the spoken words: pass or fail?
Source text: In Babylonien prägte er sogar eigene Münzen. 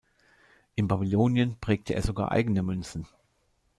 pass